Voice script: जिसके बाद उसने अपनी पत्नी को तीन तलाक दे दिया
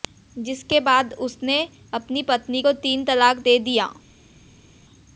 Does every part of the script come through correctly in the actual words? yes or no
yes